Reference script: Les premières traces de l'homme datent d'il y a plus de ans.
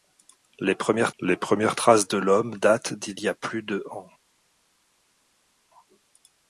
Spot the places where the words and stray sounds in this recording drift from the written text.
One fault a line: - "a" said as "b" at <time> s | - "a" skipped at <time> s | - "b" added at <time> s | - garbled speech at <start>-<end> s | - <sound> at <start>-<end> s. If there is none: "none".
- "les premières" added at 1.2 s